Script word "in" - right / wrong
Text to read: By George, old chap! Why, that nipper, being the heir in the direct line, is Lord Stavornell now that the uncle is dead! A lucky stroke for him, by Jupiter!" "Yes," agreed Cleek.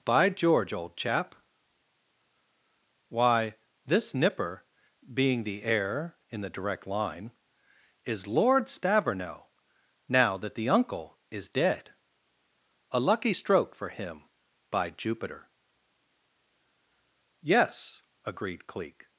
right